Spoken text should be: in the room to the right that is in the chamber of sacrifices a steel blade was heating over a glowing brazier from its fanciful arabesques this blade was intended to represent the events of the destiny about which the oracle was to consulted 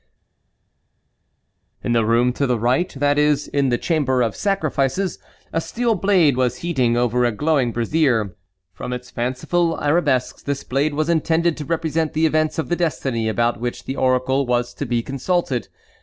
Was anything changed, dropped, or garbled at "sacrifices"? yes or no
no